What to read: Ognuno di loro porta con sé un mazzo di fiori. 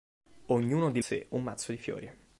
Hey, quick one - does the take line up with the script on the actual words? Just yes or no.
no